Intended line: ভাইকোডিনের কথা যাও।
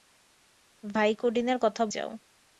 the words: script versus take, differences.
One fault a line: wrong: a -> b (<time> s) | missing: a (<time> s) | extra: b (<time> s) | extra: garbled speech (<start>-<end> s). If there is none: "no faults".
no faults